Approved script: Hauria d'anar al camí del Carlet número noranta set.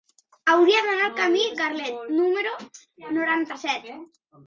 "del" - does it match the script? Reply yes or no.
no